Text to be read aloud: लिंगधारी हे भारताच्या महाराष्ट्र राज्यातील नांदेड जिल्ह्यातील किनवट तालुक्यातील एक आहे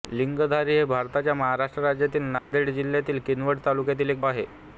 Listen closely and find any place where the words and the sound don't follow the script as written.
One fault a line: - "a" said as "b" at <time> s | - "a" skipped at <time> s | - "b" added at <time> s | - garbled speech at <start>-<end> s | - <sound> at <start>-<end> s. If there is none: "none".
- dropout at 2.4-2.5 s